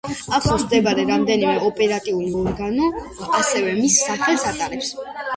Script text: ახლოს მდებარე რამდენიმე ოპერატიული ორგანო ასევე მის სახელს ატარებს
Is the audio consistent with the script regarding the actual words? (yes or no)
yes